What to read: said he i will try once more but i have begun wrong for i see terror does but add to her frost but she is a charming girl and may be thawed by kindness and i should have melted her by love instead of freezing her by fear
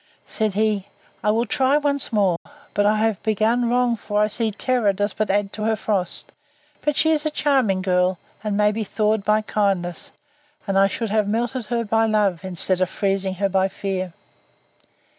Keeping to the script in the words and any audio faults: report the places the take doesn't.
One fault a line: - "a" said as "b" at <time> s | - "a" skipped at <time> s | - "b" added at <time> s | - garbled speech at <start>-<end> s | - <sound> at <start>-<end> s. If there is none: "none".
- dropout at 2.4-2.5 s